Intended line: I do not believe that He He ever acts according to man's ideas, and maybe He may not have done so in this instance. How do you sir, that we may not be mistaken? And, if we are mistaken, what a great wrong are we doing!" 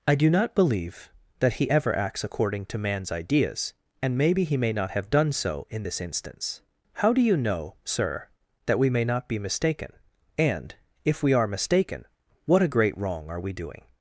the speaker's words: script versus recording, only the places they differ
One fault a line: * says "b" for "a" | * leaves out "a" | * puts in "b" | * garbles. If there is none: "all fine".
* leaves out "He"
* puts in "know"